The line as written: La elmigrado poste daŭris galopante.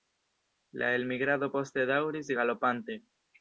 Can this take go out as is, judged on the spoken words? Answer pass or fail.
pass